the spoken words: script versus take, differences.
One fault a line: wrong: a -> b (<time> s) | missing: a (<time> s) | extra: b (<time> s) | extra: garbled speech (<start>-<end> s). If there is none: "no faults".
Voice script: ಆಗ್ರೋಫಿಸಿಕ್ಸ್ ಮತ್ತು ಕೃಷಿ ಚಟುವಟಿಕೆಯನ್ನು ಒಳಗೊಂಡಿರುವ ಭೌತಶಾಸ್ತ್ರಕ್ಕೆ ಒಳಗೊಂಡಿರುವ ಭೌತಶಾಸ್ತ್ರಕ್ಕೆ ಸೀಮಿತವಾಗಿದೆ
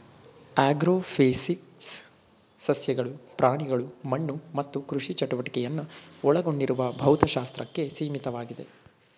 extra: ಸಸ್ಯಗಳು ಪ್ರಾಣಿಗಳು ಮಣ್ಣು (2.6 s)
missing: ಒಳಗೊಂಡಿರುವ ಭೌತಶಾಸ್ತ್ರಕ್ಕೆ (7.9 s)